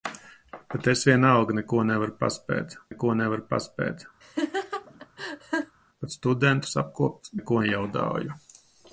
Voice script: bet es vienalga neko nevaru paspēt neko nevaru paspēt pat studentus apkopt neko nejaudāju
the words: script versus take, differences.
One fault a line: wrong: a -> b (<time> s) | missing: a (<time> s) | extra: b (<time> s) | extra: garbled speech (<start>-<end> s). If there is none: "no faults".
no faults